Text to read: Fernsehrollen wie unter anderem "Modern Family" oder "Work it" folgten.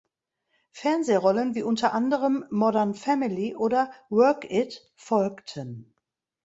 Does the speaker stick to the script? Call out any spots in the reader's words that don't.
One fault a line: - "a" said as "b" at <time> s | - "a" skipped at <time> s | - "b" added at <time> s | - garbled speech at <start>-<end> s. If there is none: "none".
none